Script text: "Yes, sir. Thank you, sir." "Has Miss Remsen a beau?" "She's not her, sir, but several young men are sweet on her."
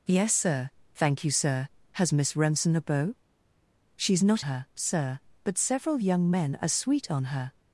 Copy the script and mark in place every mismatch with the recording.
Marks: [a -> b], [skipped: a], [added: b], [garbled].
"Yes, sir. Thank you, sir." "Has Miss Remsen a beau?" "She's not her, sir, but several young men are sweet on her."